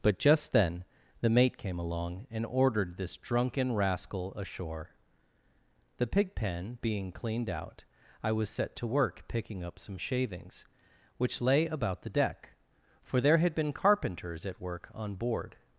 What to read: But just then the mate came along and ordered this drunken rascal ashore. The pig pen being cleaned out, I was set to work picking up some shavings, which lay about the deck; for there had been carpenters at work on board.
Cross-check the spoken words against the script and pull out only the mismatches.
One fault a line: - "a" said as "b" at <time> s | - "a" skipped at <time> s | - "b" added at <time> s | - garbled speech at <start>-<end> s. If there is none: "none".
none